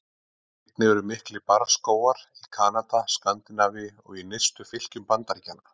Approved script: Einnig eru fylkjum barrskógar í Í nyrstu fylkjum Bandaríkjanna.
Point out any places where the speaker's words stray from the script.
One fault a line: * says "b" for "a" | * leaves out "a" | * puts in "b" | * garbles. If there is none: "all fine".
* says "miklir" for "fylkjum"
* puts in "Kanada Skandinavíu og"